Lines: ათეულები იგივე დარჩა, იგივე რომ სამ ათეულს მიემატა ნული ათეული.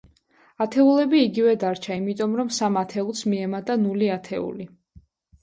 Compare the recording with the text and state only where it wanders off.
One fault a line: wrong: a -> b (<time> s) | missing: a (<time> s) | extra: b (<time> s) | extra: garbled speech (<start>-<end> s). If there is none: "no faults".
wrong: იგივე -> იმიტომ (2.0 s)